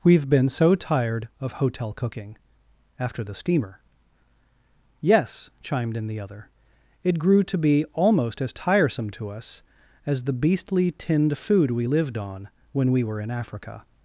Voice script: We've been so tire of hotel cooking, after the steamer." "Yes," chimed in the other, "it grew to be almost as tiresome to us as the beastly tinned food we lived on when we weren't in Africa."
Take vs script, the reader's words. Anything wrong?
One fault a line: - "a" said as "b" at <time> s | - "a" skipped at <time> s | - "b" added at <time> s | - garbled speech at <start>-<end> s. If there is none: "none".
- "tire" said as "tired" at 0.7 s
- "weren't" said as "were" at 13.0 s